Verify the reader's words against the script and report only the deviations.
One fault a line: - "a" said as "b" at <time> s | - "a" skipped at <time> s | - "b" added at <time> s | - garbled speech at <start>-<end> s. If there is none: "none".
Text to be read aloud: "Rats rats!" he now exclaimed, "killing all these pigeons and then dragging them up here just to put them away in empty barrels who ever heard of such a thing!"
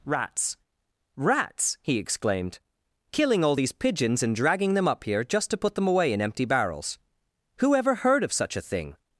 - "now" skipped at 2.0 s
- "then" skipped at 4.3 s